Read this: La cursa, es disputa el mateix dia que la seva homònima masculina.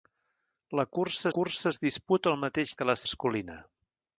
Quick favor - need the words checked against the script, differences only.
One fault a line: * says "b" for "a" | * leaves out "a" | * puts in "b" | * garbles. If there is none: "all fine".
* puts in "cursa"
* leaves out "dia"
* leaves out "seva homònima"